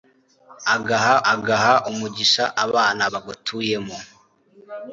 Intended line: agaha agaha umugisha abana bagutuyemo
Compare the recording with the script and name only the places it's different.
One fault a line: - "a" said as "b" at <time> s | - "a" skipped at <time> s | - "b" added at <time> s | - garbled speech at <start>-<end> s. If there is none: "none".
none